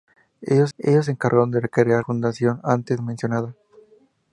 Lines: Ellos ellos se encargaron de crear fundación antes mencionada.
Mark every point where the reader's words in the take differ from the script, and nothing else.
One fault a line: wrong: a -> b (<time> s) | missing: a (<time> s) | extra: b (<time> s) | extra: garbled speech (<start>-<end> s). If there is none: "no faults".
no faults